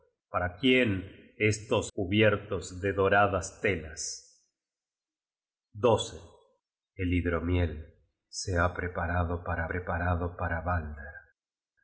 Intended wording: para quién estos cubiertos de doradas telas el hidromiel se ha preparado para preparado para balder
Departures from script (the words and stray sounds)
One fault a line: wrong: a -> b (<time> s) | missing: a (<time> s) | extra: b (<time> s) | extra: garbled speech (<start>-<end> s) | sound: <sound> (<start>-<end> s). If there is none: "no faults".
no faults